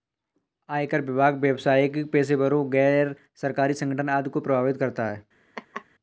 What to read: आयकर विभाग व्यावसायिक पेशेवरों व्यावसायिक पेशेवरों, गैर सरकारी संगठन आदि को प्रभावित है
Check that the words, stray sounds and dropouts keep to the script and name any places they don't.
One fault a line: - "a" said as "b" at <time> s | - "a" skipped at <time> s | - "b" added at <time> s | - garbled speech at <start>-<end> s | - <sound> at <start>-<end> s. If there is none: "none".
- "व्यावसायिक पेशेवरों" skipped at 2.7 s
- "करता" added at 4.8 s
- laugh at 5.6-5.9 s